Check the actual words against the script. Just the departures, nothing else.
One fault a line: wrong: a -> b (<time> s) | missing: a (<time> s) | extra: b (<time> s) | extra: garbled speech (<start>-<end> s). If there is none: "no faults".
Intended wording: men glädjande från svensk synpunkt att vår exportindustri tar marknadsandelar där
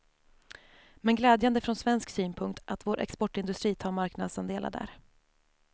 no faults